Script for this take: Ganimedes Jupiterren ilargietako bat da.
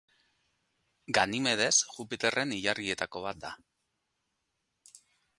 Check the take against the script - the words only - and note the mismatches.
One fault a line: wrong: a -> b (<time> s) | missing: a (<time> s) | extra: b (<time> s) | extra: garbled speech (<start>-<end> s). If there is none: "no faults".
no faults